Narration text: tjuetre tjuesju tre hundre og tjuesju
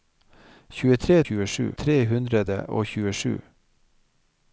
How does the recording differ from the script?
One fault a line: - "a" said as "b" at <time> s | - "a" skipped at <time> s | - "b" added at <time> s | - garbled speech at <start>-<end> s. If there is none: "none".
none